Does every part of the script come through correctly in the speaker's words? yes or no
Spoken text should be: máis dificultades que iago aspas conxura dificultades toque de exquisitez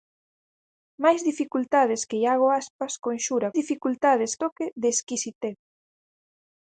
yes